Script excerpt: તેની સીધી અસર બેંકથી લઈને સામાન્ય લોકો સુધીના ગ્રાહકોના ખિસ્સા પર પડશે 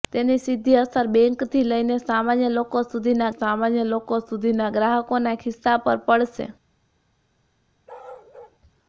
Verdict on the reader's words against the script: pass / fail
fail